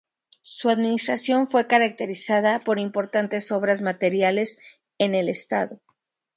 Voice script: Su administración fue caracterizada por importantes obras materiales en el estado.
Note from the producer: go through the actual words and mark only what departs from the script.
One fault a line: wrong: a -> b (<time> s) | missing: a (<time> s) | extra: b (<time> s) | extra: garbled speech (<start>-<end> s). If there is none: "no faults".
no faults